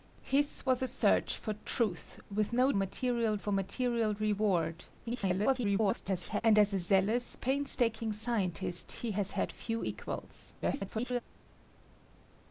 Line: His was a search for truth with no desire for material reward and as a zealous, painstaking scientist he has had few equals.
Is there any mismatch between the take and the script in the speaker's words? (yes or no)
yes